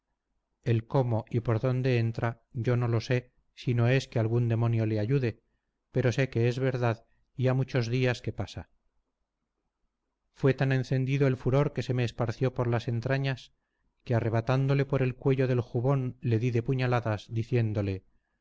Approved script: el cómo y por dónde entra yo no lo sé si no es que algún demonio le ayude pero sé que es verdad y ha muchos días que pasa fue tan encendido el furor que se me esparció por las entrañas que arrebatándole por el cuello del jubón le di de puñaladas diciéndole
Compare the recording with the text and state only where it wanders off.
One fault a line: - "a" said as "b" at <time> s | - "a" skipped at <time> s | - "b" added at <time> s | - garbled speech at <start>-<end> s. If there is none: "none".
none